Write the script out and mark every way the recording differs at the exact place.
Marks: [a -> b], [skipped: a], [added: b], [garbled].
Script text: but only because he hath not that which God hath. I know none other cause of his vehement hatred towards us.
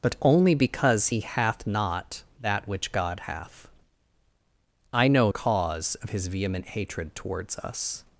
but only because he hath not that which God hath. I know [skipped: none other] cause of his vehement hatred towards us.